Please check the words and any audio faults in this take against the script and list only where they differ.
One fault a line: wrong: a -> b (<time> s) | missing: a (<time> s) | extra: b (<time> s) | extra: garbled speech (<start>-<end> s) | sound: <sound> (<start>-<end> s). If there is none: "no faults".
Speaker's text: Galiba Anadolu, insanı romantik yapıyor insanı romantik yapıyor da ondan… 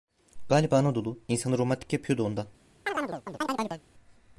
missing: insanı romantik yapıyor (2.2 s)
sound: chirp (2.9-3.8 s)